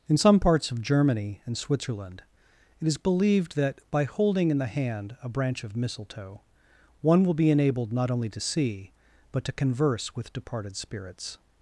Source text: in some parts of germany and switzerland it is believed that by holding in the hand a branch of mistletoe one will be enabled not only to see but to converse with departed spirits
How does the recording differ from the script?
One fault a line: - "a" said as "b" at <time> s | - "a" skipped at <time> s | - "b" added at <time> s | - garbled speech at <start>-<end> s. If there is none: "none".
none